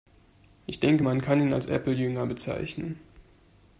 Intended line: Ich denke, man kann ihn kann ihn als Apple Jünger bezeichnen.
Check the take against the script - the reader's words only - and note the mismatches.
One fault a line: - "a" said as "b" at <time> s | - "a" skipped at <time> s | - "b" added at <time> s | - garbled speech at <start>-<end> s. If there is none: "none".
- "kann ihn" skipped at 1.5 s